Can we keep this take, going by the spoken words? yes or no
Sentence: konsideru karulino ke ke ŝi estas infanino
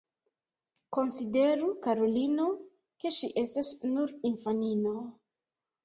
no